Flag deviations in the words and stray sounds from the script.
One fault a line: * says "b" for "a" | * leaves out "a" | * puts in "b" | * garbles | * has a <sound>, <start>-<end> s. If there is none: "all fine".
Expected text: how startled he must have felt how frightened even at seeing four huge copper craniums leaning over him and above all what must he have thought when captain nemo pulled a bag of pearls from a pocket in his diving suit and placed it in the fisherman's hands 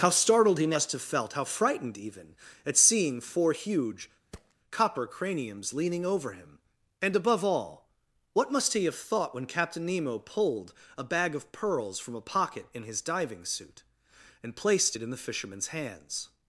* has a thud, 4.3-4.5 s